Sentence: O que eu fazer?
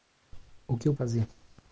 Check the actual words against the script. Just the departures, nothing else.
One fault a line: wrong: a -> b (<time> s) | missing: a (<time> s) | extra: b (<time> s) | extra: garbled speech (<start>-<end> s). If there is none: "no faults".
no faults